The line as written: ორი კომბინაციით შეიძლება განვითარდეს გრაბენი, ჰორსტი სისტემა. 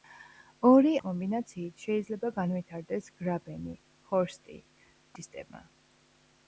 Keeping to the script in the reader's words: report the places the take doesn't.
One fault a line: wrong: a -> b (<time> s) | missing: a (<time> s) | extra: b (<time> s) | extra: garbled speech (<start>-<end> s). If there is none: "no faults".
no faults